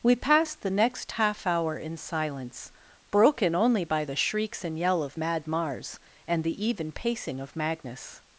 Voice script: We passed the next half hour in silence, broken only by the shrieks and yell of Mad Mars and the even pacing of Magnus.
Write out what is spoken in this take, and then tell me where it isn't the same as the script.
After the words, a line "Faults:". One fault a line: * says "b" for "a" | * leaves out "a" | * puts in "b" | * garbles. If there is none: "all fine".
We passed the next half hour in silence, broken only by the shrieks and yell of Mad Mars and the even pacing of Magnus.
Faults:
all fine